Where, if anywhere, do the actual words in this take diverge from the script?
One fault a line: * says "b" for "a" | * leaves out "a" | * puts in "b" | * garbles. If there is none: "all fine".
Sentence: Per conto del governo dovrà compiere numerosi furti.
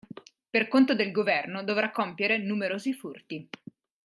all fine